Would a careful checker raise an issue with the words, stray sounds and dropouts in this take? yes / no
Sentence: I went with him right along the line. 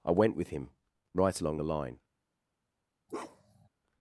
yes